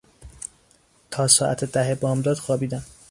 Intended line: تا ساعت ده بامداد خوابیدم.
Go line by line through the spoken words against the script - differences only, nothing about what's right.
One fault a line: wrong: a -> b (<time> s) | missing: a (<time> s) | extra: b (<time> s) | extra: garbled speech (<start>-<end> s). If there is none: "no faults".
no faults